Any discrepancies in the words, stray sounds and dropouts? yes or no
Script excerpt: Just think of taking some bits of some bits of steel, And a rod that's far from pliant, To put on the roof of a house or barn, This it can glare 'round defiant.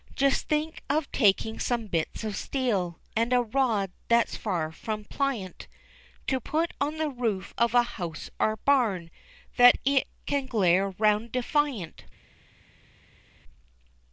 yes